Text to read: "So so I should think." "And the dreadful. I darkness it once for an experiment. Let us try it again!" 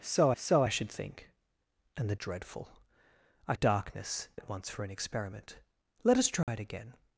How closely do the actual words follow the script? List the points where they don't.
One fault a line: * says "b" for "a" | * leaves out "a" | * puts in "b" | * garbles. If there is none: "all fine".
all fine